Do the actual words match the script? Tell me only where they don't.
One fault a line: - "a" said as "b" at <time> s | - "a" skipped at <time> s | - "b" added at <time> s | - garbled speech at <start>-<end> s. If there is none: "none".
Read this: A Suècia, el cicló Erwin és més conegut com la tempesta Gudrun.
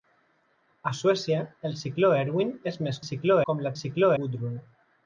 - "conegut" said as "cicló" at 3.1 s
- "tempesta" said as "cicló" at 3.8 s